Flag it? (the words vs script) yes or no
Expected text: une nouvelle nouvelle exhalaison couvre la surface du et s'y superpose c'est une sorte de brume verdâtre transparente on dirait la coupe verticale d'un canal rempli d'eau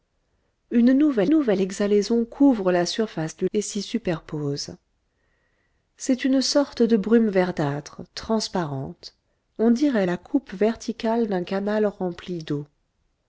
no